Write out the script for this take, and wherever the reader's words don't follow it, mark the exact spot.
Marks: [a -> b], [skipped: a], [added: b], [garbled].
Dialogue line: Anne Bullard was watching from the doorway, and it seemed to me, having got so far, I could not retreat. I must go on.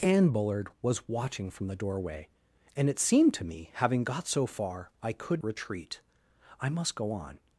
Anne Bullard was watching from the doorway, and it seemed to me, having got so far, I could [skipped: not] retreat. I must go on.